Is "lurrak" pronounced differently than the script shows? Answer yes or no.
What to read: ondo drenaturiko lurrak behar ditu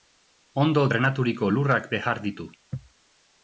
no